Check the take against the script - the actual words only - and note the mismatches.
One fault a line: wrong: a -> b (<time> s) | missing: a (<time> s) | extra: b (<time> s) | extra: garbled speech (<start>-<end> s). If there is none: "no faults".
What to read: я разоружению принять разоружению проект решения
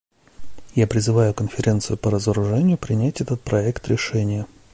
extra: призываю конференцию по (0.9 s)
wrong: разоружению -> этот (3.2 s)